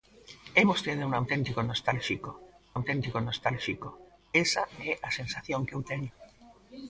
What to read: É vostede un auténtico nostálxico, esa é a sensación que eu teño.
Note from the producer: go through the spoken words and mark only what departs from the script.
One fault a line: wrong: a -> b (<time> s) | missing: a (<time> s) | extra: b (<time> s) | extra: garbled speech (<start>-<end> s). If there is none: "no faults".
extra: auténtico nostálxico (2.8 s)